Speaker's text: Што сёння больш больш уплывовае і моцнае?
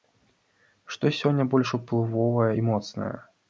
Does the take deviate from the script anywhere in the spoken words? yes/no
yes